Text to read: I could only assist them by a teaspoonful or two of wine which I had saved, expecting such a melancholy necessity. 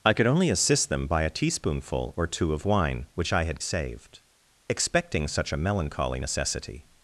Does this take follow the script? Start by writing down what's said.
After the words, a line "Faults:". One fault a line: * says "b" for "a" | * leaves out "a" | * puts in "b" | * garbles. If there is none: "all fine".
I could only assist them by a teaspoonful or two of wine which I had saved, expecting such a melancholy necessity.
Faults:
all fine